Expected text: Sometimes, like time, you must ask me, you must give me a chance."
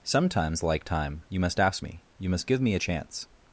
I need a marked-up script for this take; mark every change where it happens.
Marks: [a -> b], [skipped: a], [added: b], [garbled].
Sometimes, like time, you must ask me, you must give me a chance."